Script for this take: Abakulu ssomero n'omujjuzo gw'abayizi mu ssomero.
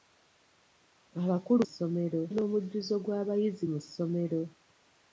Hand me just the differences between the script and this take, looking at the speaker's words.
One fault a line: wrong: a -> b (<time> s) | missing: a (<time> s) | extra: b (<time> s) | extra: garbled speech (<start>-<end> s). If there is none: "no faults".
no faults